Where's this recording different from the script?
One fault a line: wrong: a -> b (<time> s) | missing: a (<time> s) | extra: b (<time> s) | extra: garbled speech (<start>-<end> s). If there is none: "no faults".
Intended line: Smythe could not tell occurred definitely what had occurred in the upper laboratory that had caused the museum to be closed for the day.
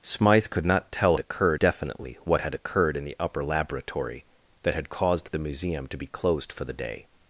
no faults